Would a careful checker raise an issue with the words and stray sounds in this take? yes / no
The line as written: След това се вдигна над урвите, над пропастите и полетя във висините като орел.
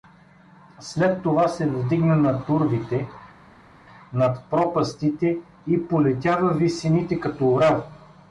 no